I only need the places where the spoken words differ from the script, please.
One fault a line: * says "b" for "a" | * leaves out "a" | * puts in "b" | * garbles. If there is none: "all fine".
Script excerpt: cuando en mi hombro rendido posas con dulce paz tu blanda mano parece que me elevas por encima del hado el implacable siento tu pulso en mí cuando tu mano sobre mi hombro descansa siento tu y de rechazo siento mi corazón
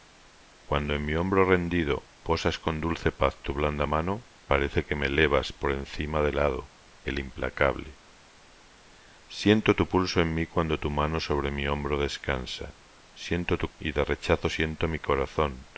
all fine